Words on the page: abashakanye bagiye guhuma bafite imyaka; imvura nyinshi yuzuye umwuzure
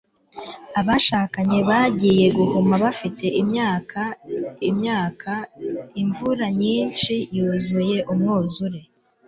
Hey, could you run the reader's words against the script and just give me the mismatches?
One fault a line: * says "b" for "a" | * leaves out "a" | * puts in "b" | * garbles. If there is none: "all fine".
* puts in "imyaka"